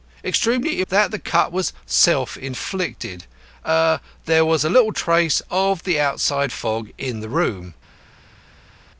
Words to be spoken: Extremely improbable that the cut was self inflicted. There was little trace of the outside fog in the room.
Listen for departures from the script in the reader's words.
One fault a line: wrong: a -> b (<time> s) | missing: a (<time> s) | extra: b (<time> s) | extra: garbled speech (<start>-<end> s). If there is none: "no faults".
missing: improbable (0.8 s)